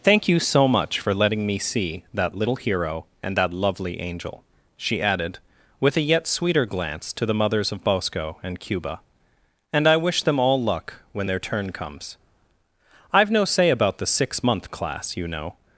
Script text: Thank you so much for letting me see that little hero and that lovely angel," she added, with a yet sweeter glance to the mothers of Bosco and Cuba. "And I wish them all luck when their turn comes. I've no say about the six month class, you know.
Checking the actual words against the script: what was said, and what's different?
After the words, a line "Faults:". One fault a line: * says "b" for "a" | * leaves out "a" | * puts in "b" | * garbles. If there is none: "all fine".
Thank you so much for letting me see that little hero and that lovely angel," she added, with a yet sweeter glance to the mothers of Bosco and Cuba. "And I wish them all luck when their turn comes. I've no say about the six month class, you know.
Faults:
all fine